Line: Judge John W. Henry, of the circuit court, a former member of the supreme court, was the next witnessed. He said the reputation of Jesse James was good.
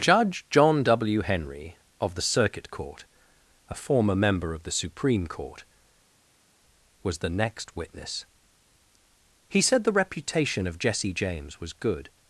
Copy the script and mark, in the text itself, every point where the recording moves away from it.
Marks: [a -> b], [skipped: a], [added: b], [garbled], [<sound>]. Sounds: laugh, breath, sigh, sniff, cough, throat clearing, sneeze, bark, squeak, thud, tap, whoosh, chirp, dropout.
Judge John W. Henry, of the circuit court, a former member of the supreme court, was the next [witnessed. -> witness] He said the reputation of Jesse James was good.